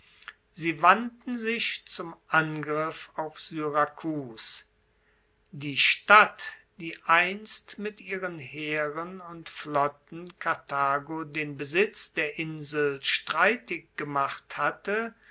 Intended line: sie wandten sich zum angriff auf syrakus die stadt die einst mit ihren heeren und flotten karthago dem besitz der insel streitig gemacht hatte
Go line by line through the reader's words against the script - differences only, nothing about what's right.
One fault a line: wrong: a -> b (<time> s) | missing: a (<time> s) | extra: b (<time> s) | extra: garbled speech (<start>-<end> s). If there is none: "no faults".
wrong: dem -> den (11.2 s)